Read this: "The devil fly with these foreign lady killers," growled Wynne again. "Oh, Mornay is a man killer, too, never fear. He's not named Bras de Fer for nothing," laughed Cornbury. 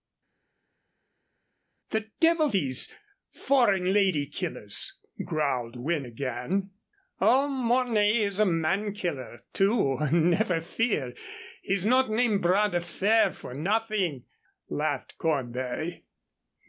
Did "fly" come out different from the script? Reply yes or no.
yes